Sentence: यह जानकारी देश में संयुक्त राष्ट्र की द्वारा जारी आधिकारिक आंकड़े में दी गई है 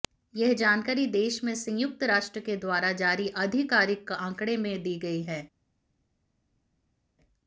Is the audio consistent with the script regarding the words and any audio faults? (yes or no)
no